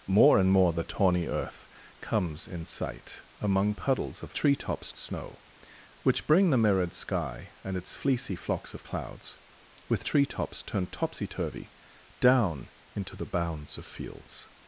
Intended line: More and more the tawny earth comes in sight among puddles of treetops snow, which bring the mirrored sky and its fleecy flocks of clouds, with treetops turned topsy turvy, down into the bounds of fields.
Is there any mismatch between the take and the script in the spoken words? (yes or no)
no